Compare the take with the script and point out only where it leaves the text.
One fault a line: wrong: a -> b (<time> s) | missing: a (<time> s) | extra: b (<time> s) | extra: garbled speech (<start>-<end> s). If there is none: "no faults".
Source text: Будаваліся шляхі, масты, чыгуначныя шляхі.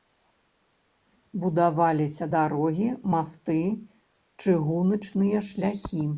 wrong: шляхі -> дарогі (2.4 s)